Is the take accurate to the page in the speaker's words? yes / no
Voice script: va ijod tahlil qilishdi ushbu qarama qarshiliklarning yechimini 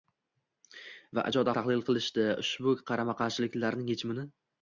yes